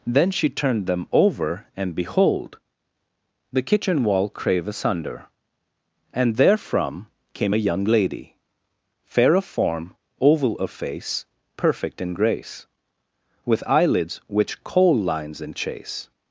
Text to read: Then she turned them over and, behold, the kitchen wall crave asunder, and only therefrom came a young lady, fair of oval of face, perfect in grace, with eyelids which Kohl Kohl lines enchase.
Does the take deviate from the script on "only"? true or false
true